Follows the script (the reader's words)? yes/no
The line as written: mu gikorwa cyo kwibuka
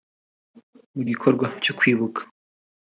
yes